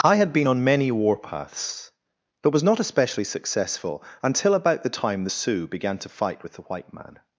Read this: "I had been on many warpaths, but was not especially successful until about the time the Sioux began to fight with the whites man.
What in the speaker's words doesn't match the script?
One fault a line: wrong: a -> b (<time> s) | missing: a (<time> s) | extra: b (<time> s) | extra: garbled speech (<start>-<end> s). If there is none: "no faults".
wrong: whites -> white (6.6 s)